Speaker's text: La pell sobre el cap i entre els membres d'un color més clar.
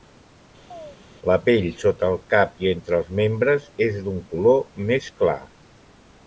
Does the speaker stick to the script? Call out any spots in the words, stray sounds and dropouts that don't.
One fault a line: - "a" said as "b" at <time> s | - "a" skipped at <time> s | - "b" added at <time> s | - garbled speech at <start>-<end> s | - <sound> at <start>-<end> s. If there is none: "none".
- chirp at 0.7-1.0 s
- "sobre" said as "sota" at 1.8 s
- "és" added at 3.9 s